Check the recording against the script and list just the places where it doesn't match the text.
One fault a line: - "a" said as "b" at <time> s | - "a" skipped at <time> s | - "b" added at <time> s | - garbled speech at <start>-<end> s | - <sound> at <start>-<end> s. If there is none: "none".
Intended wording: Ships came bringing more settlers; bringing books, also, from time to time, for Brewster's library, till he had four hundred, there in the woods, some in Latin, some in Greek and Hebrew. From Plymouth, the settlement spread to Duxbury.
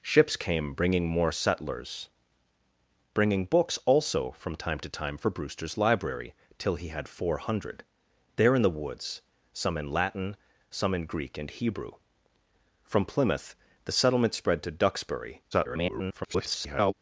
- garbled speech at 15.5-16.9 s